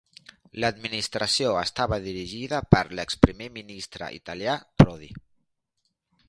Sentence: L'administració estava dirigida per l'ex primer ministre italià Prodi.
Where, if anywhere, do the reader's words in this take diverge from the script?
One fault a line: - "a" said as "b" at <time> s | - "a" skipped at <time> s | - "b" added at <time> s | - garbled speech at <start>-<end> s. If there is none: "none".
none